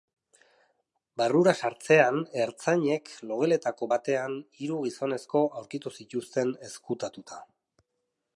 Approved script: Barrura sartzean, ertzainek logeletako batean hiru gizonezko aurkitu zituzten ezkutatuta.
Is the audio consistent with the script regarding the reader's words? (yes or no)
yes